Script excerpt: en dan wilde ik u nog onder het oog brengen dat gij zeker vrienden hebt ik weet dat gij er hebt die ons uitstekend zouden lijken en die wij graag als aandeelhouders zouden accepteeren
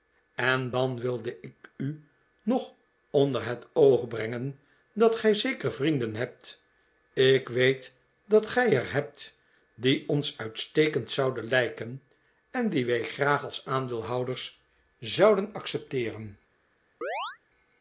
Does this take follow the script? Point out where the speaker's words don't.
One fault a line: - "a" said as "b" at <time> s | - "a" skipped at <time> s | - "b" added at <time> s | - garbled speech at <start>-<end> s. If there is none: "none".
none